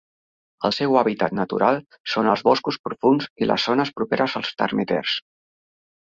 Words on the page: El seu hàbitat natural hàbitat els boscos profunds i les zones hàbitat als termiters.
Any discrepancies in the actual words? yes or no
yes